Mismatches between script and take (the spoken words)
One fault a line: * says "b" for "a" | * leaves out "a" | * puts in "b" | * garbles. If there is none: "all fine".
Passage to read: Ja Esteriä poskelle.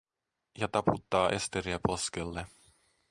* puts in "taputtaa"